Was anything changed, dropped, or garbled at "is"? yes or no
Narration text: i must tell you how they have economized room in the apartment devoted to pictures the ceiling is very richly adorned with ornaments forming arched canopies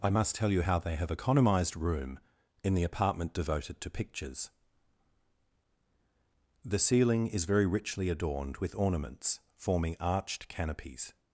no